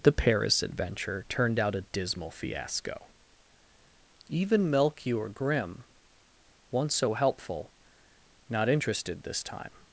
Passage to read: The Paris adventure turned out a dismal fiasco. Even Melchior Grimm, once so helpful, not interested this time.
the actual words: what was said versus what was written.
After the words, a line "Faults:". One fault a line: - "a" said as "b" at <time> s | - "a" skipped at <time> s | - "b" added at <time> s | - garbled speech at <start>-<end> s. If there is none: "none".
The Paris adventure turned out a dismal fiasco. Even Melchior Grimm, once so helpful, not interested this time.
Faults:
none